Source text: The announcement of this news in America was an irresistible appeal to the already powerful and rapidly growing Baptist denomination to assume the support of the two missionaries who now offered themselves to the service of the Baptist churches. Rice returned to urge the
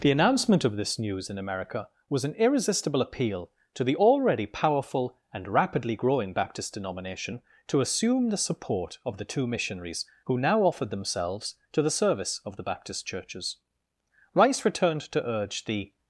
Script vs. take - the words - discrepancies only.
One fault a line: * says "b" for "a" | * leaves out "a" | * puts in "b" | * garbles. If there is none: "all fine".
all fine